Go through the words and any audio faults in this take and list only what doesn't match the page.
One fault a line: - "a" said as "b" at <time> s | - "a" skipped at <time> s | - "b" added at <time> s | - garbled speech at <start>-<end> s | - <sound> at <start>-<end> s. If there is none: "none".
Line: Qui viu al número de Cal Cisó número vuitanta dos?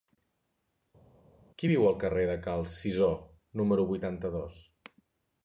- "número" said as "carrer" at 2.0 s